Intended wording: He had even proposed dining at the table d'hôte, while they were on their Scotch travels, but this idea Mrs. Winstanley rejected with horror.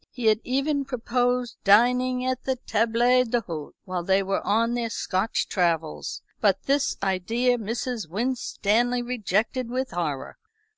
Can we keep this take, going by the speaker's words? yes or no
yes